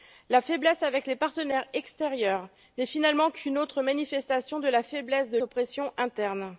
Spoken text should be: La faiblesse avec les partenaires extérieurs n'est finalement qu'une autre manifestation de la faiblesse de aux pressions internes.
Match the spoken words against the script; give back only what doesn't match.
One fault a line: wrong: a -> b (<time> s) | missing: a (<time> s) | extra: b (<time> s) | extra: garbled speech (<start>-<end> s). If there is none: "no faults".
no faults